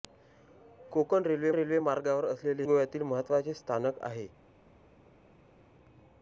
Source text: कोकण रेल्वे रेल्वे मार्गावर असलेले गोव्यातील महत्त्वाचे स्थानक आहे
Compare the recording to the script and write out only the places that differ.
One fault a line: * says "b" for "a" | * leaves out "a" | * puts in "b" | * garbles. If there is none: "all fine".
all fine